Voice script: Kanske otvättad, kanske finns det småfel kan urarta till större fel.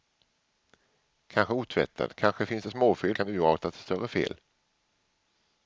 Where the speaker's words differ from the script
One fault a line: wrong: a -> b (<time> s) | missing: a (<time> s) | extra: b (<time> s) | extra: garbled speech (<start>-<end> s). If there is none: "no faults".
no faults